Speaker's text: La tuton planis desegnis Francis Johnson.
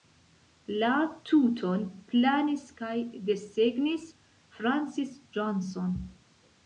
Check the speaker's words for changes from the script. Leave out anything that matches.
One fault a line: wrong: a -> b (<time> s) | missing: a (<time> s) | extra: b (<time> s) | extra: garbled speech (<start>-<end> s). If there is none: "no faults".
extra: kaj (2.8 s)